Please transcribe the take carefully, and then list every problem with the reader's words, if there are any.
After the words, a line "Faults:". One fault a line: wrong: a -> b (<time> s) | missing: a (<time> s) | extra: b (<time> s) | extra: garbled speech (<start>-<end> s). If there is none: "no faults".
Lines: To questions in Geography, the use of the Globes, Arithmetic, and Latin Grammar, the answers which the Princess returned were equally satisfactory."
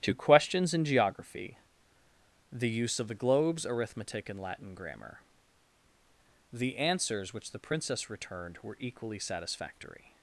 To questions in Geography, the use of the Globes, Arithmetic, and Latin Grammar, the answers which the Princess returned were equally satisfactory."
Faults:
no faults